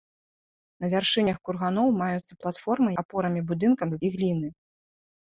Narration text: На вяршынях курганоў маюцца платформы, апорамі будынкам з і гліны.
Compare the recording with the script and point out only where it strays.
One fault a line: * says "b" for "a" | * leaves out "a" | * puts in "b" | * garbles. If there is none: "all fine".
all fine